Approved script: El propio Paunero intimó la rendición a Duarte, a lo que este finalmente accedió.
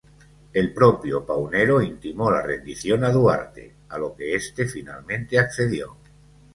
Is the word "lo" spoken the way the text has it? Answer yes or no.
yes